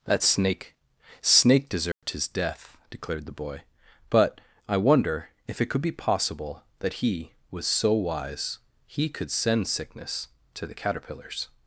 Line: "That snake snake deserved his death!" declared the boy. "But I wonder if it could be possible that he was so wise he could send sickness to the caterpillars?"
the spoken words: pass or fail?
pass